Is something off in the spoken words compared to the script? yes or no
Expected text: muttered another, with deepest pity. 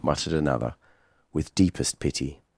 no